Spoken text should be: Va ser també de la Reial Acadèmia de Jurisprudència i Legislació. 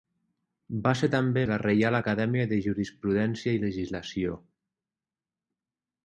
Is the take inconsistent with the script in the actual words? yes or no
no